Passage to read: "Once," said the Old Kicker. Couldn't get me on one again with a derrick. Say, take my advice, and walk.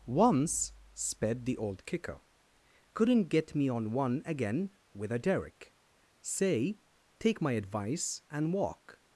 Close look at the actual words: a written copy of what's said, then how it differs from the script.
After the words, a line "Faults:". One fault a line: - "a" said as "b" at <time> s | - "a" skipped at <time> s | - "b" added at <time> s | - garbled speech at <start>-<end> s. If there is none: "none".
"Once," sped the Old Kicker. Couldn't get me on one again with a derrick. Say, take my advice, and walk.
Faults:
- "said" said as "sped" at 0.9 s